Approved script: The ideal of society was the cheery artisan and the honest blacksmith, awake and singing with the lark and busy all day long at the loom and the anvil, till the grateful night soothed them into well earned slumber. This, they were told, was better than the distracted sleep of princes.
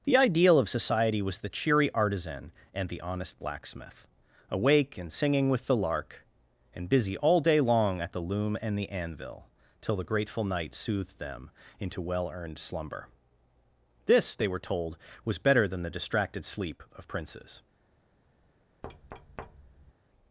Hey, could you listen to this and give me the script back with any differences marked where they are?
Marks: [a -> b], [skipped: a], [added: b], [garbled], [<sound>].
The ideal of society was the cheery artisan and the honest blacksmith, awake and singing with the lark and busy all day long at the loom and the anvil, till the grateful night soothed them into well earned slumber. This, they were told, was better than the distracted sleep of princes. [thud]